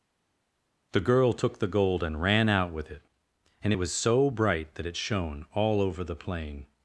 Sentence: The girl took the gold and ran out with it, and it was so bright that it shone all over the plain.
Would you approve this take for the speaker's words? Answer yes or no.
yes